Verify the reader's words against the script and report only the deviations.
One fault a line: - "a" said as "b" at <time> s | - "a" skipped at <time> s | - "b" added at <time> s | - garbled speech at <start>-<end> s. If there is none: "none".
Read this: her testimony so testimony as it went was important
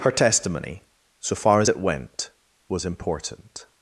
- "testimony" said as "far" at 1.4 s